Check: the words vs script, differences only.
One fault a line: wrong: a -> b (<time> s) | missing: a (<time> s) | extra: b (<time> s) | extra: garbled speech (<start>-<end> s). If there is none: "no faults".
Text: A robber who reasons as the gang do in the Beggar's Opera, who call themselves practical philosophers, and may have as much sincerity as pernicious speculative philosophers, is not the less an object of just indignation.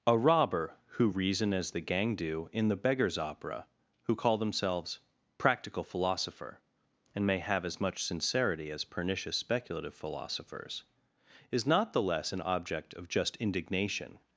wrong: reasons -> reason (1.1 s)
wrong: philosophers -> philosopher (5.8 s)